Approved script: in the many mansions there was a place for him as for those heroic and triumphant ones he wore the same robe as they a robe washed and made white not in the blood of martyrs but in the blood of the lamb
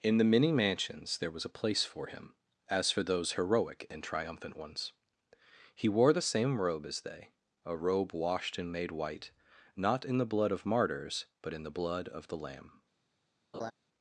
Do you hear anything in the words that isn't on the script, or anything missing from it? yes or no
no